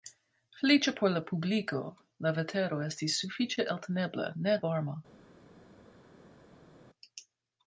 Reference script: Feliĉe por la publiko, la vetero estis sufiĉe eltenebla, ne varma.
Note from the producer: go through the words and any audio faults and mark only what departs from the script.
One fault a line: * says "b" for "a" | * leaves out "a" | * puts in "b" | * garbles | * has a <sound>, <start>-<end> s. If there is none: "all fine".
all fine